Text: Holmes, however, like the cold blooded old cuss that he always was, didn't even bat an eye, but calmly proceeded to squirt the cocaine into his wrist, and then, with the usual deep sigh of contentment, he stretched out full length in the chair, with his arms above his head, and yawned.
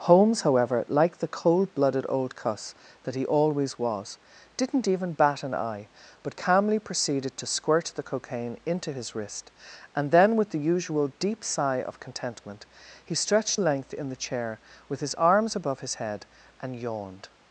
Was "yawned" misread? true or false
false